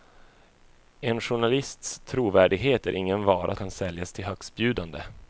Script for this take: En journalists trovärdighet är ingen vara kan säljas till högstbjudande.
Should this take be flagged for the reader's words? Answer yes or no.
no